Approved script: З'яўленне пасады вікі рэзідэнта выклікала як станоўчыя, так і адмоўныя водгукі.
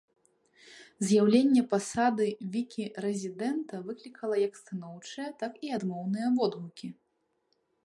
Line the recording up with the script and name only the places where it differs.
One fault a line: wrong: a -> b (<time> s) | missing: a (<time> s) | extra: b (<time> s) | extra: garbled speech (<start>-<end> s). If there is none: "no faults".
no faults